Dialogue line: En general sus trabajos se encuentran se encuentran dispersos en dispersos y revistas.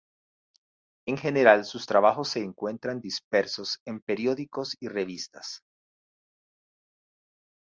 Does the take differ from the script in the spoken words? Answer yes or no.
yes